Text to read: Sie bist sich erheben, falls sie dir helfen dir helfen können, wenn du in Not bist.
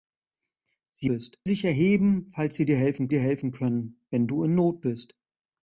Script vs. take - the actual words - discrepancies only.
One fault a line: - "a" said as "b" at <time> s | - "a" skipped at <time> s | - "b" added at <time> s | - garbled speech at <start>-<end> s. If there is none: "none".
none